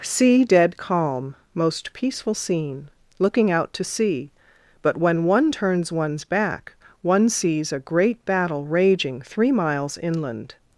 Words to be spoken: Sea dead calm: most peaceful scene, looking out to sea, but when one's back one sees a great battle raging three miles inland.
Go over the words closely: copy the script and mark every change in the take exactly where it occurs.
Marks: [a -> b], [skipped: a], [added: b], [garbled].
Sea dead calm: most peaceful scene, looking out to sea, but when [added: one turns] one's back one sees a great battle raging three miles inland.